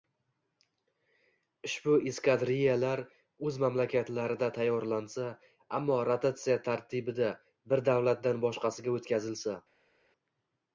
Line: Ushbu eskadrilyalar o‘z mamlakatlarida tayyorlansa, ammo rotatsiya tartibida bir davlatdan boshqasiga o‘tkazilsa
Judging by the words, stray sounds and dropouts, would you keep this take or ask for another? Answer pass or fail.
pass